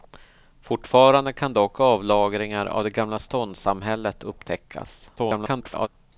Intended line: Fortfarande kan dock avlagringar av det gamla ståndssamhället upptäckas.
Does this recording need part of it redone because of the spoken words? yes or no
yes